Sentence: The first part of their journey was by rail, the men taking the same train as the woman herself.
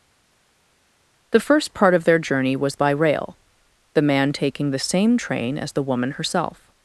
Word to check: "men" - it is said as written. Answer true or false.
false